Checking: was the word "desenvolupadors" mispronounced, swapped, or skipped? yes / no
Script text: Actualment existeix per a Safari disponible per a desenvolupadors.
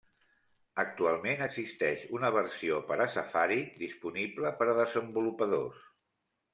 no